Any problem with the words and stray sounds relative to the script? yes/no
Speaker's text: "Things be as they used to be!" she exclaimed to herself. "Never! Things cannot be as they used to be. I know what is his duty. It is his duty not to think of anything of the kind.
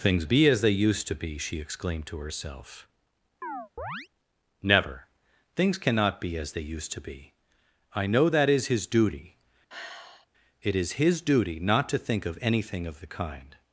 yes